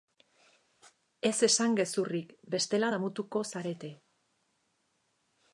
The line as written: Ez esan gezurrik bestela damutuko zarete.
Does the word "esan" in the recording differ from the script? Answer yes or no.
no